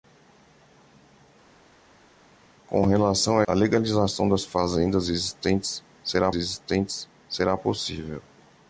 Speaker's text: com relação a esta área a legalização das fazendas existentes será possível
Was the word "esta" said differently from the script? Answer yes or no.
yes